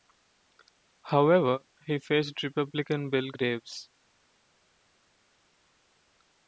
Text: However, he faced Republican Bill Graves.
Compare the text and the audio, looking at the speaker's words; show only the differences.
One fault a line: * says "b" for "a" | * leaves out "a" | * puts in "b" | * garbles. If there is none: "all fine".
all fine